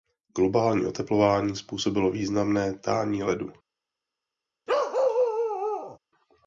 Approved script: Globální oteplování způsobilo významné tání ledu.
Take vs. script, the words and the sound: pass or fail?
fail